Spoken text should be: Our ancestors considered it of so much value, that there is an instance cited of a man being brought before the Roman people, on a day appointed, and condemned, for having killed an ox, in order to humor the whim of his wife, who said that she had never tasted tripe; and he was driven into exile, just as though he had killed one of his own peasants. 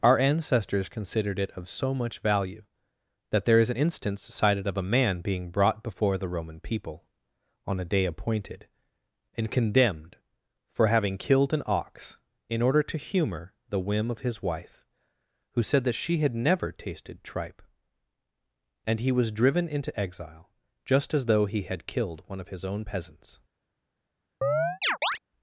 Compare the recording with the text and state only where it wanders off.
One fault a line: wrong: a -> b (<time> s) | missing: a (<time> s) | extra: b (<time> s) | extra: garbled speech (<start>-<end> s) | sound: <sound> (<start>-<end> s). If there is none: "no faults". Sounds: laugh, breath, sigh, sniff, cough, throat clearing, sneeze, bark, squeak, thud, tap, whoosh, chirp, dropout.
sound: chirp (24.4-25.2 s)